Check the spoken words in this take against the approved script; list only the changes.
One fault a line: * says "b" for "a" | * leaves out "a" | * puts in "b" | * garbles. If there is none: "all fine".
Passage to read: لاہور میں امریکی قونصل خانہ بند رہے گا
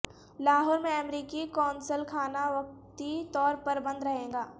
* puts in "وقتی طور پر"